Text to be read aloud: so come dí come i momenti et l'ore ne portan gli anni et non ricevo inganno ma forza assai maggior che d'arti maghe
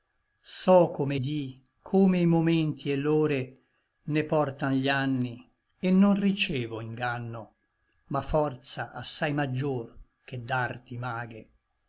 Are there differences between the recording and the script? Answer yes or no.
no